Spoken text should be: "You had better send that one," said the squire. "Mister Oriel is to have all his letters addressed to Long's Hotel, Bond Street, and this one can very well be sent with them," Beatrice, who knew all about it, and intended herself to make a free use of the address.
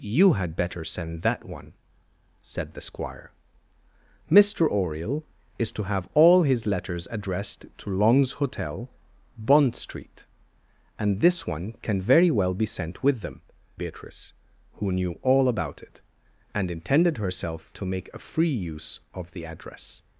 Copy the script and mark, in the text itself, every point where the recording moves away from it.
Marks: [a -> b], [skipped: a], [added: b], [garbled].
"You had better send that one," said the squire. "Mister Oriel is to have all his letters addressed to Long's Hotel, Bond Street, and this one can very well be sent with them," Beatrice, who knew all about it, and intended herself to make a free use of the address.